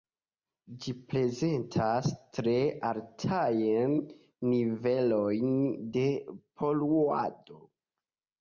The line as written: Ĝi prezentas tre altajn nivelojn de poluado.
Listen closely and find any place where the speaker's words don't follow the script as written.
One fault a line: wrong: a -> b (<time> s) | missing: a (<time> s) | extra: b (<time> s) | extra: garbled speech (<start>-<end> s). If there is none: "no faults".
no faults